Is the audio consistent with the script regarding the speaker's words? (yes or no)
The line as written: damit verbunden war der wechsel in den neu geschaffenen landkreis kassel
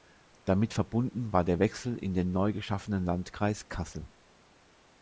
yes